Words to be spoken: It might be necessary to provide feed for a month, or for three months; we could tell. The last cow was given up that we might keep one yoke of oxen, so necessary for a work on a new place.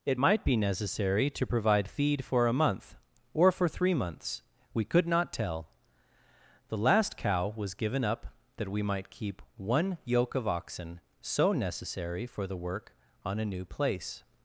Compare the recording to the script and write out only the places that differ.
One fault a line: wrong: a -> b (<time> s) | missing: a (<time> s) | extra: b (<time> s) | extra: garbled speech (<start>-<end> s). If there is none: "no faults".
extra: not (5.1 s)
wrong: a -> the (12.5 s)